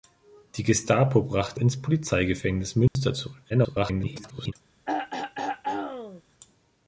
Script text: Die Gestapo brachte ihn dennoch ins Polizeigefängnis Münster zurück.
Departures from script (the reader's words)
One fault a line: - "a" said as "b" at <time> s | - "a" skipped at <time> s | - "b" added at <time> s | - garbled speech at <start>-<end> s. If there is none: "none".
- "ihn dennoch" skipped at 1.6 s
- garbled speech at 3.5-4.5 s